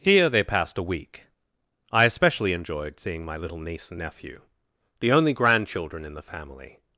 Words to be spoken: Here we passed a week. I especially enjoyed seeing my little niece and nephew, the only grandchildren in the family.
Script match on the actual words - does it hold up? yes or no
no